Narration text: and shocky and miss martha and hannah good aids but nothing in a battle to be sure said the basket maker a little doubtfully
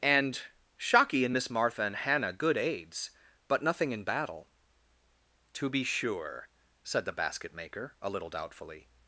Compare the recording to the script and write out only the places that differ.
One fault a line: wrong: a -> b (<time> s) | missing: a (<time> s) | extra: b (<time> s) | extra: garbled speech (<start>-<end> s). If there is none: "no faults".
missing: a (4.0 s)